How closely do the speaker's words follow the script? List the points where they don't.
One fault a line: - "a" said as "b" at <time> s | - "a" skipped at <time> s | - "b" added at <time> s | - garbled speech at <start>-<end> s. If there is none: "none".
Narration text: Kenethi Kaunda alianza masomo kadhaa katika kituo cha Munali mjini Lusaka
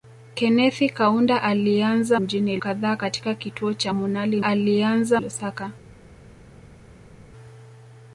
- "masomo" said as "mjini" at 2.2 s
- "mjini" said as "alianza" at 4.4 s